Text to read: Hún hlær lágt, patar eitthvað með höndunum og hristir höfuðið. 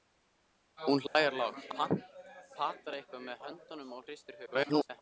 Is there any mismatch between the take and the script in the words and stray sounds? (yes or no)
yes